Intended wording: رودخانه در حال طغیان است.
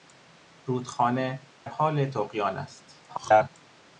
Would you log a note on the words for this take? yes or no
yes